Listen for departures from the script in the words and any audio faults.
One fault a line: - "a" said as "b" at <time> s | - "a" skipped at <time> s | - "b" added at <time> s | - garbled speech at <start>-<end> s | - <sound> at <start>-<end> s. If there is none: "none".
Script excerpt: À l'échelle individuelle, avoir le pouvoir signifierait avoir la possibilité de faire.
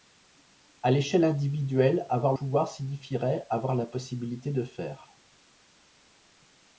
- "le" skipped at 2.3 s